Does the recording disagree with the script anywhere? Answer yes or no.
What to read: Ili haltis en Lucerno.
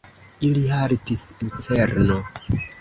yes